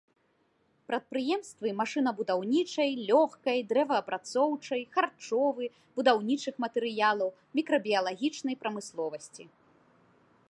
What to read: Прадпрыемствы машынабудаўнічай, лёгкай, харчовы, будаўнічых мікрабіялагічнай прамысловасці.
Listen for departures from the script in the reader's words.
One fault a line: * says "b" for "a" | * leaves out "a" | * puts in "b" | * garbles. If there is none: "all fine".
* puts in "дрэваапрацоўчай"
* puts in "матэрыялаў"